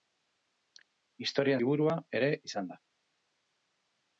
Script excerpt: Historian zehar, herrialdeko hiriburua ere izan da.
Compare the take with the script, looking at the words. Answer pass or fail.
fail